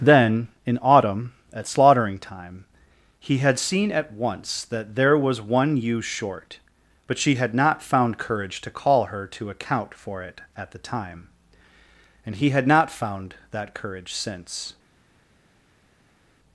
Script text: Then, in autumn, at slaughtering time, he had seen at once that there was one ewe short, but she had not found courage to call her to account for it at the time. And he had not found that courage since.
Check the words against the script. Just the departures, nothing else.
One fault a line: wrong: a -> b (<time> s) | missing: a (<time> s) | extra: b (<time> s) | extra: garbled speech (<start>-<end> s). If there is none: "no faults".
no faults